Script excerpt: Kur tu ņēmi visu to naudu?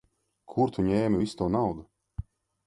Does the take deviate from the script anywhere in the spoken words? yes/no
no